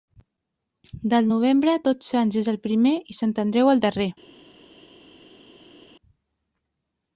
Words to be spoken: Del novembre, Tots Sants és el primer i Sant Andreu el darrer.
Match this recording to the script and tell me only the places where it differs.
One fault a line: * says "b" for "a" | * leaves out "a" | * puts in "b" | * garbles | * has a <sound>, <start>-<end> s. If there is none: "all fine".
all fine